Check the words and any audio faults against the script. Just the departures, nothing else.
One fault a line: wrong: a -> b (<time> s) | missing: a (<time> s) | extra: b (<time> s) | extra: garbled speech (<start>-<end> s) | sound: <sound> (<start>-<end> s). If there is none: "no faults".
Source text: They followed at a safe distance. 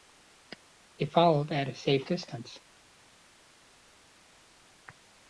no faults